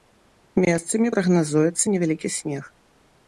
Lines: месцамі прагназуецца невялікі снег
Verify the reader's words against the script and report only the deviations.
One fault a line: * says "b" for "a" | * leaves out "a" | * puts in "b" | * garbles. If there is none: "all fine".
all fine